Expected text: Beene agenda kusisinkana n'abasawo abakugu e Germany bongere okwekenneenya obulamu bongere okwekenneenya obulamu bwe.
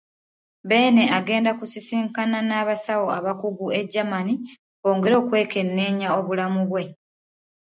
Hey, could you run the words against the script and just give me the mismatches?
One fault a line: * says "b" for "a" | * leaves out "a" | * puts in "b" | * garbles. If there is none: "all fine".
* leaves out "bongere okwekenneenya obulamu"